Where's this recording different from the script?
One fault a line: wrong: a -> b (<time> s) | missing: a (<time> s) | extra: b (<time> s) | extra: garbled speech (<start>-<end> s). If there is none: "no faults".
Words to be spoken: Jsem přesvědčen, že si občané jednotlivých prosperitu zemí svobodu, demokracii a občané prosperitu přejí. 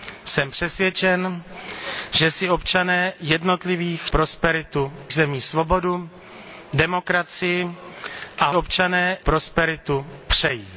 no faults